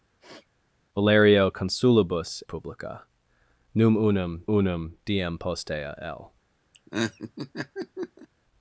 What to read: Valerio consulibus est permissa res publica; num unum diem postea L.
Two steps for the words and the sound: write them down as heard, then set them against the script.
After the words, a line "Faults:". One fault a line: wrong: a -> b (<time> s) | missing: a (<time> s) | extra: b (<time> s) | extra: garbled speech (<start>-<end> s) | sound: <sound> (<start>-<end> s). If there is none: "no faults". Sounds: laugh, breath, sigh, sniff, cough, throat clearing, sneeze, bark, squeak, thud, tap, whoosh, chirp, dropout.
Valerio consulibus publica; num unum unum diem postea L.
Faults:
sound: sniff (0.2-0.5 s)
missing: est permissa res (2.4 s)
extra: unum (4.4 s)
sound: laugh (6.7-8.3 s)